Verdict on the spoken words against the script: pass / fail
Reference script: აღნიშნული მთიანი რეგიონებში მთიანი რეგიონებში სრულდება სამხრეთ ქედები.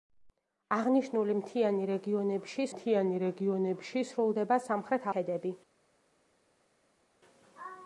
pass